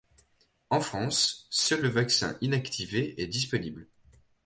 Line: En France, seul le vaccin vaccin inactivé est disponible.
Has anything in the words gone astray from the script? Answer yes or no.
yes